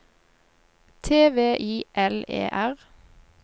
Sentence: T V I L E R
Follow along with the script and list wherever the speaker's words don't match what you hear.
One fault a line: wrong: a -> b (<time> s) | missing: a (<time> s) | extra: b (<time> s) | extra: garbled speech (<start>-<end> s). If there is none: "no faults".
no faults